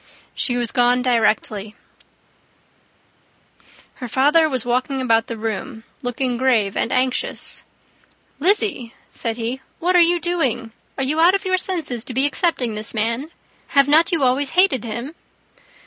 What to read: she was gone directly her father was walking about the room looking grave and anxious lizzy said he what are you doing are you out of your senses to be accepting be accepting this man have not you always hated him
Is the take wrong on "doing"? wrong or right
right